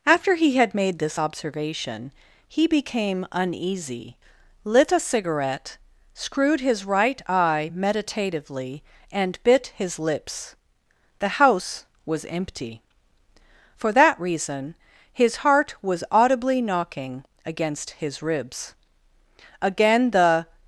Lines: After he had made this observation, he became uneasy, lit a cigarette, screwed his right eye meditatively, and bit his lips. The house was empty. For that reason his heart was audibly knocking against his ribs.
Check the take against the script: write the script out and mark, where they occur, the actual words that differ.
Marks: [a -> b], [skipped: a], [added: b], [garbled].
After he had made this observation, he became uneasy, lit a cigarette, screwed his right eye meditatively, and bit his lips. The house was empty. For that reason his heart was audibly knocking against his ribs. [added: Again the]